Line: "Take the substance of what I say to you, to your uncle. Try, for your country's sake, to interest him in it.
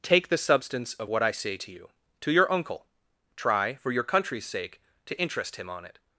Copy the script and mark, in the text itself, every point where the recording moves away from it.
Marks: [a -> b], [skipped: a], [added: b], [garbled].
"Take the substance of what I say to you, to your uncle. Try, for your country's sake, to interest him [in -> on] it.